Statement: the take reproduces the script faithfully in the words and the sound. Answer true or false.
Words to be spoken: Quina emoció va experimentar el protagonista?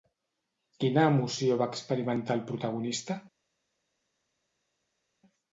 true